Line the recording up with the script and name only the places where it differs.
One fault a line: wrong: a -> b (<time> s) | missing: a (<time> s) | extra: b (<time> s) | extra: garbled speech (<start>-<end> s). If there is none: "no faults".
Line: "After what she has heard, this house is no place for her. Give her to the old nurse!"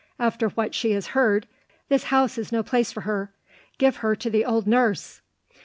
no faults